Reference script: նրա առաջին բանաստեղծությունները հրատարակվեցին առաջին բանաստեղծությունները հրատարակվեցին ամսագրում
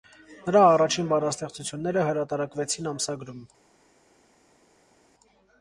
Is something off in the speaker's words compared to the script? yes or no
yes